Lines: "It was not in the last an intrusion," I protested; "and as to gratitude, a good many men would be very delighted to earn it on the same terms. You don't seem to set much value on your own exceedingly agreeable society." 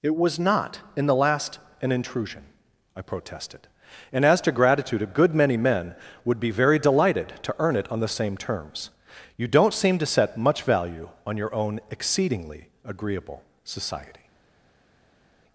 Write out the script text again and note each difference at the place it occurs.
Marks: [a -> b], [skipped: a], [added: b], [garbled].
"It was not in the last an intrusion," I protested; "and as to gratitude, a good many men would be very delighted to earn it on the same terms. You don't seem to set much value on your own exceedingly agreeable society."